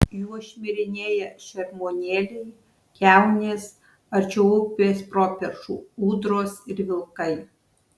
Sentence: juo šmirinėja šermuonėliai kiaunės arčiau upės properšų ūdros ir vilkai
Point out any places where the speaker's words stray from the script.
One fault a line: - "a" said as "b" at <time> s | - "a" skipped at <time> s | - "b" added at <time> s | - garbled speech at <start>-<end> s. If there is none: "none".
none